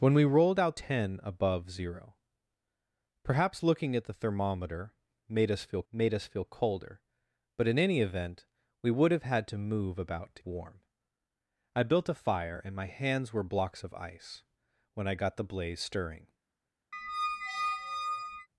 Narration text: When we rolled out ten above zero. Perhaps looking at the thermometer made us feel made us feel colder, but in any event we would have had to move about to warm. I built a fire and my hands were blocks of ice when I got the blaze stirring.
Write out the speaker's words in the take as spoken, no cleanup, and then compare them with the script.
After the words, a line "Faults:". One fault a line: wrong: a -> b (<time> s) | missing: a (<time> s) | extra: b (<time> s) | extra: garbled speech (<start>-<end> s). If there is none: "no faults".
When we rolled out ten above zero. Perhaps looking at the thermometer made us feel made us feel colder, but in any event we would have had to move about to warm. I built a fire and my hands were blocks of ice when I got the blaze stirring.
Faults:
no faults